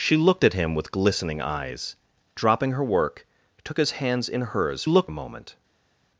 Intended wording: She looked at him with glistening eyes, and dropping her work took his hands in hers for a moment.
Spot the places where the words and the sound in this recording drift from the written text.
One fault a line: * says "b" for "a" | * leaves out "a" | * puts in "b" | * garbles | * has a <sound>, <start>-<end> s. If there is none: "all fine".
* leaves out "and"
* says "looked" for "for"